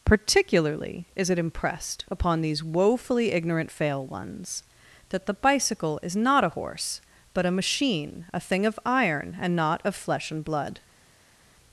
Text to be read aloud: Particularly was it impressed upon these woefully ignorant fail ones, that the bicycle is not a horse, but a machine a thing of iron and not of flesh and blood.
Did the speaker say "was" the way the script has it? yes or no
no